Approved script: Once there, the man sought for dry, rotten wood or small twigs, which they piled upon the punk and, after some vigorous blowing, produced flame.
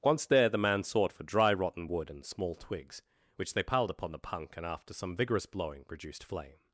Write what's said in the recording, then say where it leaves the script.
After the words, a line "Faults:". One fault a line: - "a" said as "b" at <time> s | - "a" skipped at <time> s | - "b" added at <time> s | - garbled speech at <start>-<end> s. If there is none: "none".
Once there, the man sought for dry, rotten wood and small twigs, which they piled upon the punk and, after some vigorous blowing, produced flame.
Faults:
- "or" said as "and" at 2.1 s